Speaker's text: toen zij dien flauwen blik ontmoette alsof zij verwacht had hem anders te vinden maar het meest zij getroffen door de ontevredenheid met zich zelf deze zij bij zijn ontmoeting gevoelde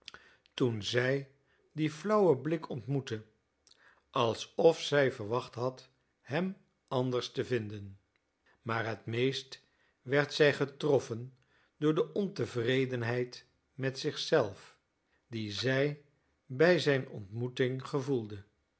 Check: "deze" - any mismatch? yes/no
yes